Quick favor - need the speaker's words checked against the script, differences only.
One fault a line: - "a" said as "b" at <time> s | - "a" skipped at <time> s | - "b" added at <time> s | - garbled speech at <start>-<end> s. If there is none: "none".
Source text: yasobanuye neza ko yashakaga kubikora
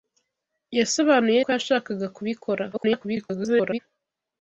- "neza" skipped at 1.4 s
- garbled speech at 2.7-3.8 s